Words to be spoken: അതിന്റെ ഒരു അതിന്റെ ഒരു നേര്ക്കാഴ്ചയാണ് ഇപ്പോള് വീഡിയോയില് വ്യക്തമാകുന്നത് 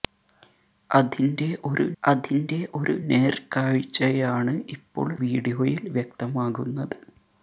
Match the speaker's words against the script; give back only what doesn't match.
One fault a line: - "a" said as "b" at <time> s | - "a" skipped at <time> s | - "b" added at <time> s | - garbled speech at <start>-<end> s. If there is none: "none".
none